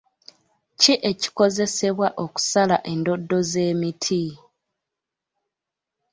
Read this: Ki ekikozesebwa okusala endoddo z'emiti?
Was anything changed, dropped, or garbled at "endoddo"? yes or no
no